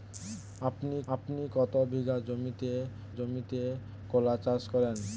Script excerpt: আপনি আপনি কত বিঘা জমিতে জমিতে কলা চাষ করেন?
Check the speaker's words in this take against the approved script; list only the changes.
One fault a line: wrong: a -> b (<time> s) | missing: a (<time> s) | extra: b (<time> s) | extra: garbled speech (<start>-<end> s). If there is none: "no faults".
no faults